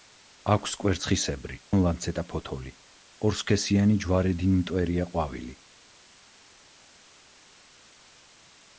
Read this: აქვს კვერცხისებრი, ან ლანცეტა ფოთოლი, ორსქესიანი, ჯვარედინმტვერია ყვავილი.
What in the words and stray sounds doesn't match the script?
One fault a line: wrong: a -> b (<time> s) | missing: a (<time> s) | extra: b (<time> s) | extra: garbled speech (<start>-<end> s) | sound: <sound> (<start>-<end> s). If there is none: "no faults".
no faults